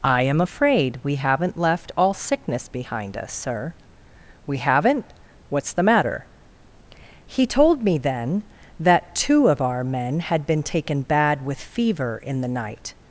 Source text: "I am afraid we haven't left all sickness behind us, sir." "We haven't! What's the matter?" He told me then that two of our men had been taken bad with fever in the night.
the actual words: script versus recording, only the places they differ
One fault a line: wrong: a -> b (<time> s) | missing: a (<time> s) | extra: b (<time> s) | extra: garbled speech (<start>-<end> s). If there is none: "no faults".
no faults